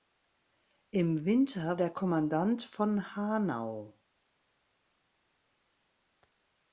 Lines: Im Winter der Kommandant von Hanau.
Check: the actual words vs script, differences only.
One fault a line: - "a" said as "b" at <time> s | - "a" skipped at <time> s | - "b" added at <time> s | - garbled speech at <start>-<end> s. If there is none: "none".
none